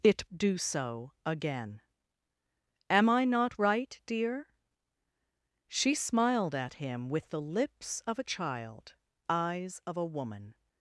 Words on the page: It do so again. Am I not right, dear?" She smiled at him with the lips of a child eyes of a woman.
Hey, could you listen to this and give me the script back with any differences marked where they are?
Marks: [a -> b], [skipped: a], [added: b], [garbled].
It do so again. Am I not right, dear?" She smiled at him with the lips of a child eyes of a woman.